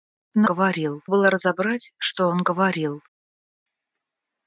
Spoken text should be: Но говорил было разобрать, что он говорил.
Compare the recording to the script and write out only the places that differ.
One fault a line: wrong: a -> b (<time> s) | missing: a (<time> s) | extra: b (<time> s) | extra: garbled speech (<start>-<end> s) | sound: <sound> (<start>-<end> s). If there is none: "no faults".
no faults